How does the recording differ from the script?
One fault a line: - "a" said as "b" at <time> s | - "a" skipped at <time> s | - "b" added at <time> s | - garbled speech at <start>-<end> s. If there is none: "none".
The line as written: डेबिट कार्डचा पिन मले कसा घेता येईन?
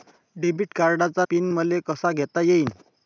none